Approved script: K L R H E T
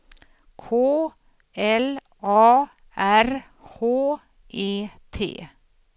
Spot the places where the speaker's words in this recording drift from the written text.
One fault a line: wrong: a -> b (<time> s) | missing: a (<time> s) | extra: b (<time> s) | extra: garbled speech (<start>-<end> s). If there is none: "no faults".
extra: A (2.2 s)